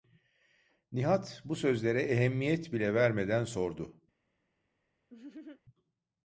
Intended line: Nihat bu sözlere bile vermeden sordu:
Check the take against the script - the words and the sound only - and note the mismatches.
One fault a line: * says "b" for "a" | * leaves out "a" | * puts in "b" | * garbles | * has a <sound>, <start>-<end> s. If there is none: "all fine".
* puts in "ehemmiyet"
* has a laugh, 5.1-5.6 s